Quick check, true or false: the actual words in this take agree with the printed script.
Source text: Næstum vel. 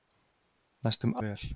true